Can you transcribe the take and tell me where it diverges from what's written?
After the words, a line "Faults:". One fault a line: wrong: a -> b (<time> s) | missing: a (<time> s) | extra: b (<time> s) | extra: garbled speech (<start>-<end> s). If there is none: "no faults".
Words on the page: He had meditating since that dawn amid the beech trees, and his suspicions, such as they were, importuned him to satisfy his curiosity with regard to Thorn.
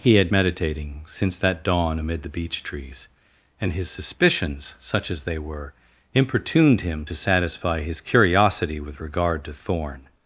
He had meditating since that dawn amid the beech trees, and his suspicions, such as they were, importuned him to satisfy his curiosity with regard to Thorn.
Faults:
no faults